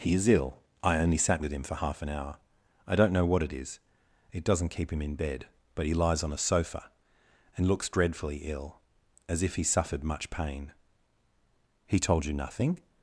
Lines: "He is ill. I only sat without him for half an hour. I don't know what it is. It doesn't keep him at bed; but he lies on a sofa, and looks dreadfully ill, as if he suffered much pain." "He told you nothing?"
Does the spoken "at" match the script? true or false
false